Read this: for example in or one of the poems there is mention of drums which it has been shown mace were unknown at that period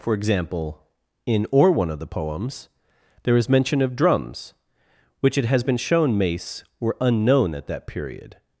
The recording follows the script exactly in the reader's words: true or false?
true